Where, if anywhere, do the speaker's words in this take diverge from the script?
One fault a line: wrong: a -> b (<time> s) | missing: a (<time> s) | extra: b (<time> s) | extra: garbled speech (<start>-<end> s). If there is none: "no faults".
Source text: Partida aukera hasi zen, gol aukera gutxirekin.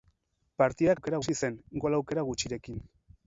no faults